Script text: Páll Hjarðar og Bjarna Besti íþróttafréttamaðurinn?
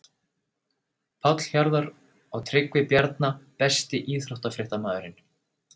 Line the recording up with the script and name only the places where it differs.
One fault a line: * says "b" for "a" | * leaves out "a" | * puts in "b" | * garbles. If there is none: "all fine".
* puts in "Tryggvi"